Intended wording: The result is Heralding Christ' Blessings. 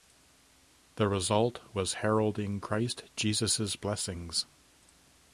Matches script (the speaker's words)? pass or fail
fail